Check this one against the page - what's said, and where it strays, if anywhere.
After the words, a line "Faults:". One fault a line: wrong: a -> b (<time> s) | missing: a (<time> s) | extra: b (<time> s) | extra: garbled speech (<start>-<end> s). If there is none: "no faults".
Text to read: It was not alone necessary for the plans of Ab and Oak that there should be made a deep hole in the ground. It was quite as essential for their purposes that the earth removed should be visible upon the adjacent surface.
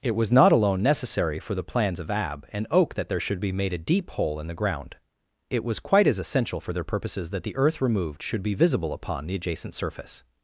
It was not alone necessary for the plans of Ab and Oak that there should be made a deep hole in the ground. It was quite as essential for their purposes that the earth removed should be visible upon the adjacent surface.
Faults:
no faults